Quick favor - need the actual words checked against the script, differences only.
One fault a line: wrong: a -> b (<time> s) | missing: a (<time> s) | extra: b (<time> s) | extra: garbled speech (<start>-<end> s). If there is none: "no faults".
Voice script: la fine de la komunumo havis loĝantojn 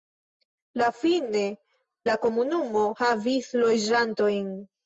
missing: de (1.4 s)